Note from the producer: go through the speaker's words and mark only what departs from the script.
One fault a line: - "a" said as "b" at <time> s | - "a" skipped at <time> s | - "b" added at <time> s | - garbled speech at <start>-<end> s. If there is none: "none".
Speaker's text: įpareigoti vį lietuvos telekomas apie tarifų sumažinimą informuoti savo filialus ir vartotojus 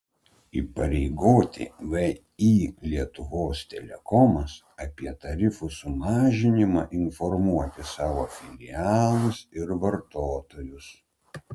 none